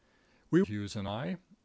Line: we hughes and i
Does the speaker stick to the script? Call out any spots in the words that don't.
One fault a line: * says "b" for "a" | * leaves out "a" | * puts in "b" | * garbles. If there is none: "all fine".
all fine